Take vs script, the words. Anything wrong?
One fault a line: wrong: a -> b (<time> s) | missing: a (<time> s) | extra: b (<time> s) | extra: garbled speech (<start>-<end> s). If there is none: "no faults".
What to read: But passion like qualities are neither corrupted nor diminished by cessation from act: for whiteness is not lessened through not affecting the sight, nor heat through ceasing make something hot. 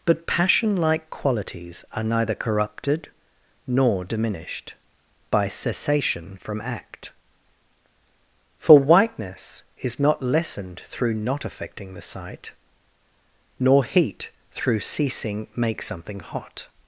no faults